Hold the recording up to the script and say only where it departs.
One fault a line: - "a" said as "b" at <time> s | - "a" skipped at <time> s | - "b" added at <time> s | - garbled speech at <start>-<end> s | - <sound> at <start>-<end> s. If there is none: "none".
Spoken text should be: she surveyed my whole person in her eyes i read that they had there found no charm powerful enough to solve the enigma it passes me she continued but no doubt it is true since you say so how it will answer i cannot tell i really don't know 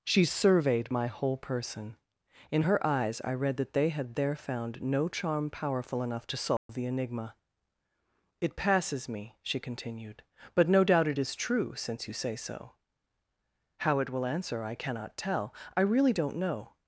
- dropout at 6.6-6.7 s